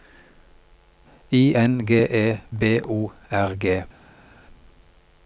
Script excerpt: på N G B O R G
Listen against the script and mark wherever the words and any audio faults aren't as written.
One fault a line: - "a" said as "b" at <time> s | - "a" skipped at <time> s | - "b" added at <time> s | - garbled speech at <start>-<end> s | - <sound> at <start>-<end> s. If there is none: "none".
- "på" said as "I" at 1.3 s
- "E" added at 2.0 s